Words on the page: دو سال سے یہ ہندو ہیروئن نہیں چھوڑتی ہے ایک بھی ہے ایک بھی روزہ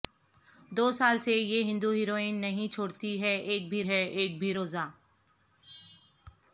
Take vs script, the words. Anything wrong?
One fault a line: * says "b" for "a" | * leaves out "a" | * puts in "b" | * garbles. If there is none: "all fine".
all fine